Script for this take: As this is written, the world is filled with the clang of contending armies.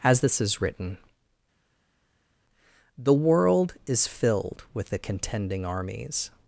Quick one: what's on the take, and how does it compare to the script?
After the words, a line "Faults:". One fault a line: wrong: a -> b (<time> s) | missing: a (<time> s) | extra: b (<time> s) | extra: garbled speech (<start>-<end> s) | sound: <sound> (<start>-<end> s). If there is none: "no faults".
As this is written, the world is filled with the contending armies.
Faults:
missing: clang of (5.0 s)